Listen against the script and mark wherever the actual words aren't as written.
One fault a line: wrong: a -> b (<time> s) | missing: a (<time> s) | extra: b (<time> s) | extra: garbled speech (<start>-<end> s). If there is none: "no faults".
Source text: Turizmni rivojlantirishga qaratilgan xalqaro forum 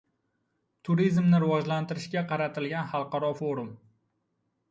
no faults